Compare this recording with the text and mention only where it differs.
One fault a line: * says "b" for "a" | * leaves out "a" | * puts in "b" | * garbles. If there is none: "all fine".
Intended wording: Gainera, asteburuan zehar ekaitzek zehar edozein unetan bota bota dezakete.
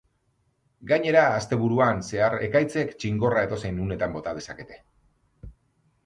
* says "txingorra" for "zehar"
* leaves out "bota"